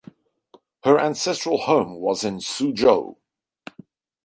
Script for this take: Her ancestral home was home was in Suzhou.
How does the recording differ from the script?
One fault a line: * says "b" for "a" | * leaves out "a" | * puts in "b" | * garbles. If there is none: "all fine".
* leaves out "home was"